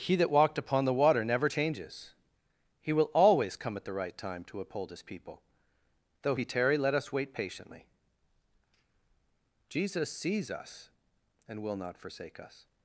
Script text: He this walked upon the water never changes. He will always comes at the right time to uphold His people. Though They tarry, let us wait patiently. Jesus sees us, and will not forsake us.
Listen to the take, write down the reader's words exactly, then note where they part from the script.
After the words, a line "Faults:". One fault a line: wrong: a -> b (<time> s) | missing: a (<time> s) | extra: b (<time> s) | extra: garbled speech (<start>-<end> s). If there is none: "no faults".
He that walked upon the water never changes. He will always come at the right time to uphold His people. Though He tarry, let us wait patiently. Jesus sees us, and will not forsake us.
Faults:
wrong: this -> that (0.1 s)
wrong: comes -> come (3.6 s)
wrong: They -> He (6.3 s)